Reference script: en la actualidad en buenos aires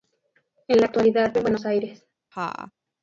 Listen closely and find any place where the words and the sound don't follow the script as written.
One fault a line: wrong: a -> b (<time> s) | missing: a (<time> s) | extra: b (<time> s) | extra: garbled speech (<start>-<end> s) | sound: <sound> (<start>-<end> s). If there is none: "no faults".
sound: laugh (2.3-2.7 s)